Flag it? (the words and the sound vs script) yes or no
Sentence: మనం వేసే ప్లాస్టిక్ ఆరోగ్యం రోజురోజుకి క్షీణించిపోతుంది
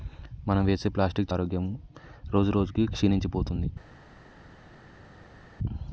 no